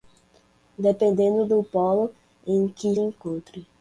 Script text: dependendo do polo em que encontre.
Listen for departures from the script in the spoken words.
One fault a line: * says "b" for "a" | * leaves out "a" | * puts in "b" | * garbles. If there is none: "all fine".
all fine